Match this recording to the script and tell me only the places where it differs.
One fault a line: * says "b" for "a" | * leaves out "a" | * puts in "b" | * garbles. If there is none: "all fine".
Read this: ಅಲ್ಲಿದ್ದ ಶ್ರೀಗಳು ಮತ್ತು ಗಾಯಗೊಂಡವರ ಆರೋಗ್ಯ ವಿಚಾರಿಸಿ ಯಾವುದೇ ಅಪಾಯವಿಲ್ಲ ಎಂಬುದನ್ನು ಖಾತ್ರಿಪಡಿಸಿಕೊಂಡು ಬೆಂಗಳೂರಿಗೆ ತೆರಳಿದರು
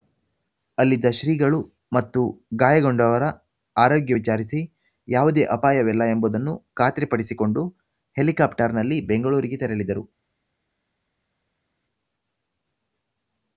* puts in "ಹೆಲಿಕಾಪ್ಟರ್‌ನಲ್ಲಿ"